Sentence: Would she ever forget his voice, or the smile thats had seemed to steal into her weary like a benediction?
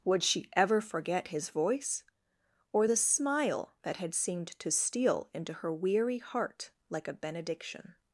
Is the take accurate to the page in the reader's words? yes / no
no